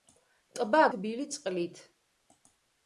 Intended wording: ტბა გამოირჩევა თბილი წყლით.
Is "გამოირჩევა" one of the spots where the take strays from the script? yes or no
yes